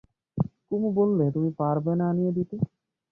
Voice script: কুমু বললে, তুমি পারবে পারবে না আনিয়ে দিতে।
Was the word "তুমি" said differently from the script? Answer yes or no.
no